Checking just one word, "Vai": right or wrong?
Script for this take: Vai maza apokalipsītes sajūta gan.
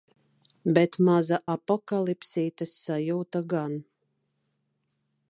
wrong